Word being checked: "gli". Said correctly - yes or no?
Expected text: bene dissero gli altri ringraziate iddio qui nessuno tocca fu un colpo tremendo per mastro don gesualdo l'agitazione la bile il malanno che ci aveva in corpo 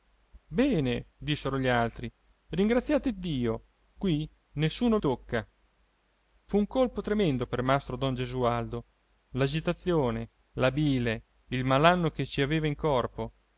yes